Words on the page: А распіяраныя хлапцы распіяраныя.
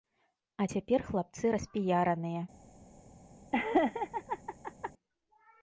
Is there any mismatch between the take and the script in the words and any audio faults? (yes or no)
yes